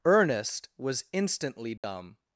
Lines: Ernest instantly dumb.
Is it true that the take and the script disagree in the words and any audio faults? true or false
true